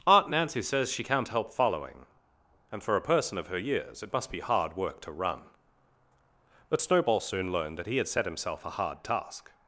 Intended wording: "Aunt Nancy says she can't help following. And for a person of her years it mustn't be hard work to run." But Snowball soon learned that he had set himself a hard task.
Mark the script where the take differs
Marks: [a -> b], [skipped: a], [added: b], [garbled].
"Aunt Nancy says she can't help following. And for a person of her years it [mustn't -> must] be hard work to run." But Snowball soon learned that he had set himself a hard task.